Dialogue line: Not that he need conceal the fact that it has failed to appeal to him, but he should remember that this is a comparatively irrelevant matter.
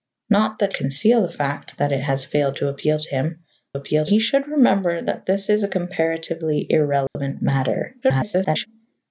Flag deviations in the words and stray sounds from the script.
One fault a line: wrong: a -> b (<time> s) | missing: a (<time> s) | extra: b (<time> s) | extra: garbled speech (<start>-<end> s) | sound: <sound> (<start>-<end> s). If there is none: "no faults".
missing: he need (0.7 s)
wrong: but -> appeal (3.7 s)
sound: dropout (7.1-7.2 s)
extra: garbled speech (8.0-8.7 s)